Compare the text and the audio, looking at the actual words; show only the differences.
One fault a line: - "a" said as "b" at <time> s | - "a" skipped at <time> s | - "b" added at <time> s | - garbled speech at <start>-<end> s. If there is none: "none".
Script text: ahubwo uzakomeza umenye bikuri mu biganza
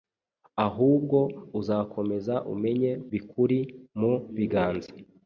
none